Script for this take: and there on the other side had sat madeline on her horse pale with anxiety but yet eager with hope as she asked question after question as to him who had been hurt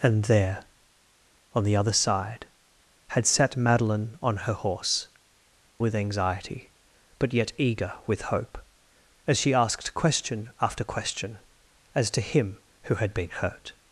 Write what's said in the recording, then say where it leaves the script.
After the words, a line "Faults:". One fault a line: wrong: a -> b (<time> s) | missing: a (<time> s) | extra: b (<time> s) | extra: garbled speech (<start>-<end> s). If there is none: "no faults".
and there on the other side had sat madeline on her horse with anxiety but yet eager with hope as she asked question after question as to him who had been hurt
Faults:
missing: pale (5.1 s)